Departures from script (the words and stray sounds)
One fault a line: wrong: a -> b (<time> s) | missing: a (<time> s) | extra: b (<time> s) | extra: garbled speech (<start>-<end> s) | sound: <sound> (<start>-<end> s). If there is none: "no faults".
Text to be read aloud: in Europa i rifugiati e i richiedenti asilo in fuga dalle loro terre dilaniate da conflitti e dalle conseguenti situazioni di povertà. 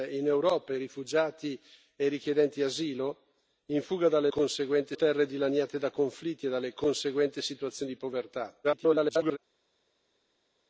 wrong: loro -> conseguenti (4.3 s)
extra: garbled speech (8.6-9.4 s)